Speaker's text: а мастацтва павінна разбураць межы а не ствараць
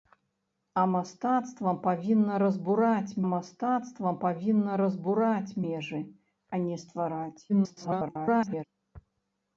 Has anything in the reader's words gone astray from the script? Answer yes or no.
yes